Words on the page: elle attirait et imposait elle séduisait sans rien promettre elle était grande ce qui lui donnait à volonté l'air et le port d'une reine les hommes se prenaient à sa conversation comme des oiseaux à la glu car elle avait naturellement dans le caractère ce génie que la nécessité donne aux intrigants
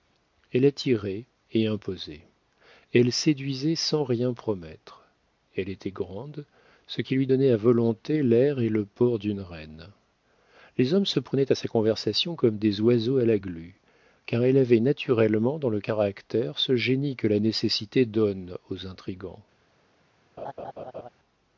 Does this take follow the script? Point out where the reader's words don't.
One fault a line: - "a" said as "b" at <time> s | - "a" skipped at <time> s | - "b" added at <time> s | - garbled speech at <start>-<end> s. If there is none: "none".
none